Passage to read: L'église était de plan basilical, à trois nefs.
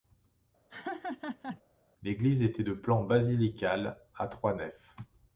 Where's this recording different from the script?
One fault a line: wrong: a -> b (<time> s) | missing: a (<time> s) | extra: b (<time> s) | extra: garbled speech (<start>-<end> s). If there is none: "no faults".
no faults